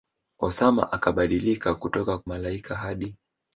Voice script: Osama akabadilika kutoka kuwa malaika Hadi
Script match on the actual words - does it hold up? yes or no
no